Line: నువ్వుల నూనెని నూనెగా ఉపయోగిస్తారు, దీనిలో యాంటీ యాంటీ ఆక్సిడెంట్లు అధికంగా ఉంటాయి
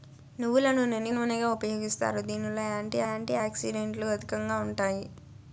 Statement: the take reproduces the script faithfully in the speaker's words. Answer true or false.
true